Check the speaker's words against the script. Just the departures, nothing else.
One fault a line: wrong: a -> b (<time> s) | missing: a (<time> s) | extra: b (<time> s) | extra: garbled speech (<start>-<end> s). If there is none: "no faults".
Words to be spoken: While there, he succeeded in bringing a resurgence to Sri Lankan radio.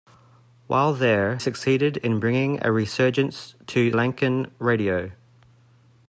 missing: he (1.4 s)
missing: Sri (3.9 s)